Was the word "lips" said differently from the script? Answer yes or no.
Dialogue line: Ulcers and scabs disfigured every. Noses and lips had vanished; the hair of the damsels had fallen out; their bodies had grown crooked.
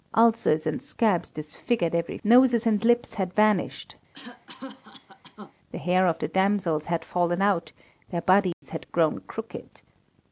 no